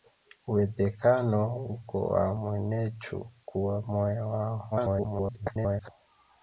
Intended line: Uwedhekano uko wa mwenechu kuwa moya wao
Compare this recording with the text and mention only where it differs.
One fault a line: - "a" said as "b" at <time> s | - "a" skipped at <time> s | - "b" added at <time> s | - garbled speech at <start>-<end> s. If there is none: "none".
- garbled speech at 4.7-5.9 s